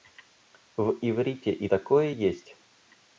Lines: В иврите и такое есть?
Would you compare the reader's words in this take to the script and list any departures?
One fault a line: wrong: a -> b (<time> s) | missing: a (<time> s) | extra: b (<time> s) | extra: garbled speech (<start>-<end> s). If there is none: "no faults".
no faults